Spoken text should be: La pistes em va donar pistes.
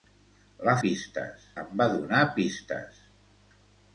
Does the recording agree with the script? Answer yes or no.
yes